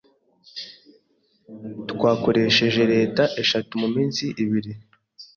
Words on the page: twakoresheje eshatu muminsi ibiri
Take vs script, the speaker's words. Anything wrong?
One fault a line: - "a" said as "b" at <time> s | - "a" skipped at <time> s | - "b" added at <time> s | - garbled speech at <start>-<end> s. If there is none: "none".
- "leta" added at 2.9 s